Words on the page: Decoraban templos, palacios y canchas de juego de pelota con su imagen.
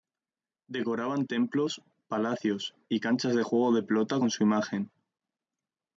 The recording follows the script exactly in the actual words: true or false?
true